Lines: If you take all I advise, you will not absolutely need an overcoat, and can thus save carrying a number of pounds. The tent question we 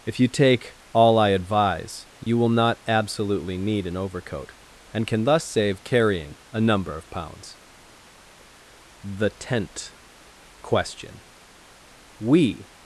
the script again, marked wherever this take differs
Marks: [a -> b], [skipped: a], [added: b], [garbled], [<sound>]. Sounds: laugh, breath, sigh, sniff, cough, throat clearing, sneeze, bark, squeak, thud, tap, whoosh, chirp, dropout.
If you take all I advise, you [dropout] will not absolutely need an overcoat, and can thus save carrying a number of pounds. The tent question we